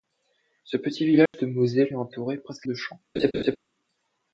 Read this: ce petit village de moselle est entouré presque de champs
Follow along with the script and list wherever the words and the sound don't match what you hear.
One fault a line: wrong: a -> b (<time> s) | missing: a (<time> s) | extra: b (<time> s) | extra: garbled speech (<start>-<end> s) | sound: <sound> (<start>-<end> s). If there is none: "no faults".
sound: dropout (1.3-1.3 s)
sound: laugh (3.2-3.6 s)